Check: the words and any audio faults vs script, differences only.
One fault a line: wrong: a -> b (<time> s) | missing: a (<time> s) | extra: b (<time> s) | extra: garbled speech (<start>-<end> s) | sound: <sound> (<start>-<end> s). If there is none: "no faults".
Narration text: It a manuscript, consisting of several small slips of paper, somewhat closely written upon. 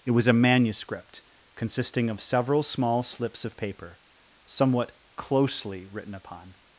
extra: was (0.1 s)